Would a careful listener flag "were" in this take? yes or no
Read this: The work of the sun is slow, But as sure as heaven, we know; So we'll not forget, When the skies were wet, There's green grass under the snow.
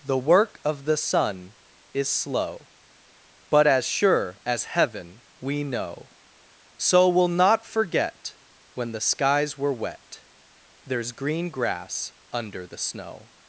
no